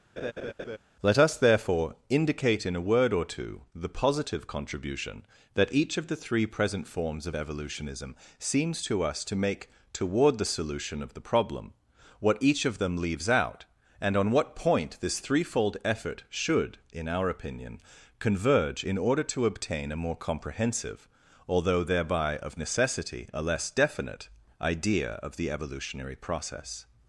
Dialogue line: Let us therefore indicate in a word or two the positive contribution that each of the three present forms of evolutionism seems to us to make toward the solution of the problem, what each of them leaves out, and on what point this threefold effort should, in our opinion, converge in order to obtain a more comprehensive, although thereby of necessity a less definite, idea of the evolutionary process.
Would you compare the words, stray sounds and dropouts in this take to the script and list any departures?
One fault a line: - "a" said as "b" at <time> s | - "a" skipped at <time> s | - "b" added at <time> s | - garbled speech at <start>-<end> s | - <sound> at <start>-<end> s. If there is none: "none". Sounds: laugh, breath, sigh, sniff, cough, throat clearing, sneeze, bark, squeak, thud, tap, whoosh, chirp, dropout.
- laugh at 0.2-0.8 s